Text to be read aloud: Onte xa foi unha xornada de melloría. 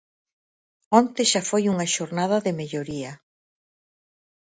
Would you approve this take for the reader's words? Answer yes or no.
yes